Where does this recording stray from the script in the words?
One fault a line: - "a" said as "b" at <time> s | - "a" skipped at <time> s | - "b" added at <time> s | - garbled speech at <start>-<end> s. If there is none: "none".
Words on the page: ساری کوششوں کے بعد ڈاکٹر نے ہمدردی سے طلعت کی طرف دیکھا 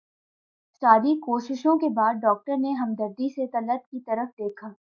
none